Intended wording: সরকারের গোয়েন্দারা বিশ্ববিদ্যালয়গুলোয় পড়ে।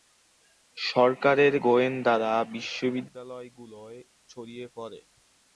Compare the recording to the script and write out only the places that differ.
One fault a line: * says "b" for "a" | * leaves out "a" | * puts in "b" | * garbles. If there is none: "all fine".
* puts in "ছড়িয়ে"